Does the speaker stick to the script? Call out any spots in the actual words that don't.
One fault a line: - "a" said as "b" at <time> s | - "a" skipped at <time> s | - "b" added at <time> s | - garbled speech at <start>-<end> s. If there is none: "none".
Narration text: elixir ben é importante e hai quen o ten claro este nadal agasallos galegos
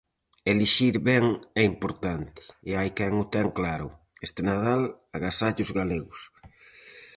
none